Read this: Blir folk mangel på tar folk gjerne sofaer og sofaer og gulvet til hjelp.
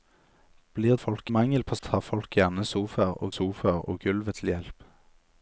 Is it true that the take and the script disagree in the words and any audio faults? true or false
false